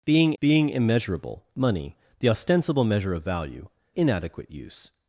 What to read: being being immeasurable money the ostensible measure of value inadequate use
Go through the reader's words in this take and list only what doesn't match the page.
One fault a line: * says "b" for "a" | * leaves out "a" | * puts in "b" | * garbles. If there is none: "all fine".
all fine